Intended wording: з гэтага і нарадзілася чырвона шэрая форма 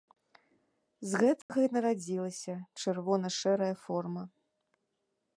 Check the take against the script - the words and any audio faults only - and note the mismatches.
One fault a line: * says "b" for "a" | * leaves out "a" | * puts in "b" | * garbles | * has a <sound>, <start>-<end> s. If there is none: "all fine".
* has a dropout, 1.4-1.5 s